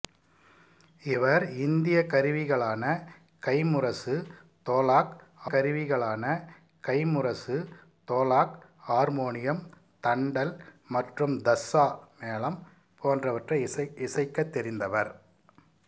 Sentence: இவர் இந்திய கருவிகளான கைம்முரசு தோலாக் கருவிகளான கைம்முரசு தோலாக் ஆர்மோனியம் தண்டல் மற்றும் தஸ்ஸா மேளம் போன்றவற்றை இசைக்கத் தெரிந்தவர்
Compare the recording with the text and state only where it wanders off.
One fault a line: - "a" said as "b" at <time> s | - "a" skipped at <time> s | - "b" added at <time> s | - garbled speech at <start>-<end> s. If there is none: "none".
none